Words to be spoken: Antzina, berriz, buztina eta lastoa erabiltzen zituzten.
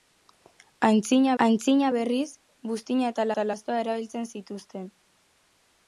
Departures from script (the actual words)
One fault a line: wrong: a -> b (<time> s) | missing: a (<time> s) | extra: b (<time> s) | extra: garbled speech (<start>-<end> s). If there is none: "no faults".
extra: antzina (1.4 s)
extra: eta (3.3 s)